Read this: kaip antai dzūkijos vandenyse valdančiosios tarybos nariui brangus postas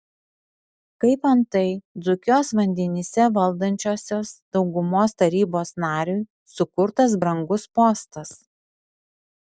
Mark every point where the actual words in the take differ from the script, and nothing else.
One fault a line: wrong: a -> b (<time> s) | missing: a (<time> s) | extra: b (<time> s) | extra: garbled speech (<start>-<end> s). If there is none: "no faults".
extra: daugumos (4.6 s)
extra: sukurtas (6.6 s)